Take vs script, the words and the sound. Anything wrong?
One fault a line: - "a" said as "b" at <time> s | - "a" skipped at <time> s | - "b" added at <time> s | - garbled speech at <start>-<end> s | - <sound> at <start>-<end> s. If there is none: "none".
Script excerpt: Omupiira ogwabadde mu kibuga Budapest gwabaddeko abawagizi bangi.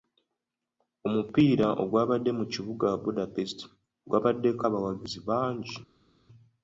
none